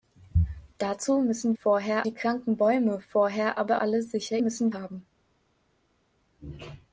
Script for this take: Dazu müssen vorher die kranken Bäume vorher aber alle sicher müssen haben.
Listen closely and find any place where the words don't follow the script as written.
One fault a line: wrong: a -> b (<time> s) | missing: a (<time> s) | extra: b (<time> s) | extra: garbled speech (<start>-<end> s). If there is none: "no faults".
no faults